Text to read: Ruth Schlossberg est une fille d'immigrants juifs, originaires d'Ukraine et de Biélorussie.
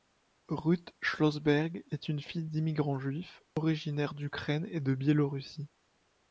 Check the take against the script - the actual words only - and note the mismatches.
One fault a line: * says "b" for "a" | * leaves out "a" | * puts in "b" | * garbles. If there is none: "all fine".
all fine